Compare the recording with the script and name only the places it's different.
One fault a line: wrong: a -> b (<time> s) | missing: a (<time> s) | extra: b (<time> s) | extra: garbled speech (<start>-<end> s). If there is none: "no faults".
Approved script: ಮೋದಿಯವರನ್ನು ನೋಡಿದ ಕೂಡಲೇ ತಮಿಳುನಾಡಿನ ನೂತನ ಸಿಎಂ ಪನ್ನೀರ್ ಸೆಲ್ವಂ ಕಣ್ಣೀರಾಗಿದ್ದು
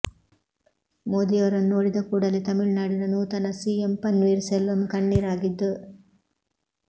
no faults